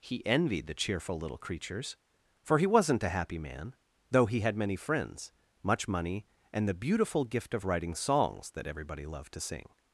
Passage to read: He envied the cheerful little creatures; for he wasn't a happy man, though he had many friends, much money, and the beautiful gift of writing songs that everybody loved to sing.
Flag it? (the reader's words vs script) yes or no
no